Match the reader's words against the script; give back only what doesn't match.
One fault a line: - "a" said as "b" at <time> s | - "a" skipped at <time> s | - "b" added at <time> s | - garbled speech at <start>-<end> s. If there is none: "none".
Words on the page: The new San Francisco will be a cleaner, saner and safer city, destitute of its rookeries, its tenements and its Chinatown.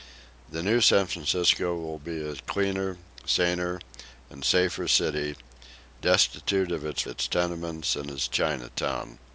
- "rookeries" skipped at 7.0 s